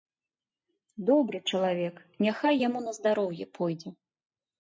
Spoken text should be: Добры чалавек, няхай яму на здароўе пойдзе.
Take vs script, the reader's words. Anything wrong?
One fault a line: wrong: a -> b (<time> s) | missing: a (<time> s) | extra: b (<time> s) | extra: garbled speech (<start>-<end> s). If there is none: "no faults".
no faults